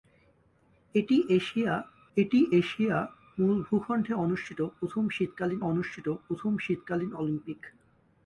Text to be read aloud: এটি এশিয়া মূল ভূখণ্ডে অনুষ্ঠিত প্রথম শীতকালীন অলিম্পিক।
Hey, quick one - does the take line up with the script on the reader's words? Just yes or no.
no